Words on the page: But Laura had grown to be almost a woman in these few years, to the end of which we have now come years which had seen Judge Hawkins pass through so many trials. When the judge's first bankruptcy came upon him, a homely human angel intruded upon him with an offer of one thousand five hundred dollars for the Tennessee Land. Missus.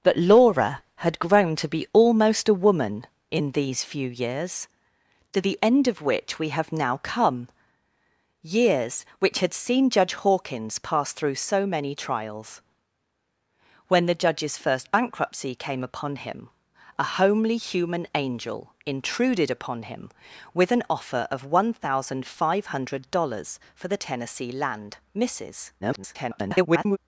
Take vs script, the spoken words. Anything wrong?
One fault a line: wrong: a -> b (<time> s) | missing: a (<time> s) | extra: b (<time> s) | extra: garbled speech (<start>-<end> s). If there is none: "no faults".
extra: garbled speech (25.8-27.0 s)